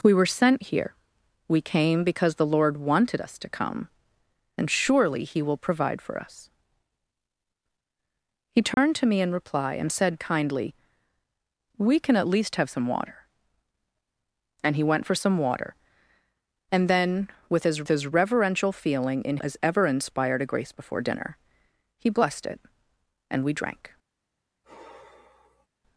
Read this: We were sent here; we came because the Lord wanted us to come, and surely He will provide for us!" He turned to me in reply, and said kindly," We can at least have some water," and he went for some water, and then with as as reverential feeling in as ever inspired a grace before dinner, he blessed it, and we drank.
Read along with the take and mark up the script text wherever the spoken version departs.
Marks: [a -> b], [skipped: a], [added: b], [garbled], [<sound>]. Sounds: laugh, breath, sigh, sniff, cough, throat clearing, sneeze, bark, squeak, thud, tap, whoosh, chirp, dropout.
We were sent here; we came because the Lord wanted us to come, and surely He will provide for us!" He turned [dropout] to me in reply, and said kindly," We can at least have some water," and he went for some water, and then with as as reverential feeling in as ever inspired a grace before dinner, he blessed it, and we drank. [sigh]